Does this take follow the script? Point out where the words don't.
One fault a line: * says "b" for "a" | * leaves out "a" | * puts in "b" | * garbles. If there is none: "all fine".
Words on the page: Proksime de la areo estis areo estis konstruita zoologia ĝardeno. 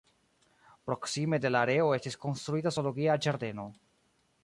* leaves out "areo estis"